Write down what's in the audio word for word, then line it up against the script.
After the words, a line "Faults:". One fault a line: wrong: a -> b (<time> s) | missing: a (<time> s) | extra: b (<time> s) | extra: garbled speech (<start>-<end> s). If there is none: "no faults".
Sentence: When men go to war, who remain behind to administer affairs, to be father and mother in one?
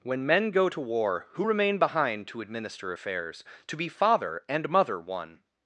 When men go to war, who remain behind to administer affairs, to be father and mother one?
Faults:
missing: in (5.0 s)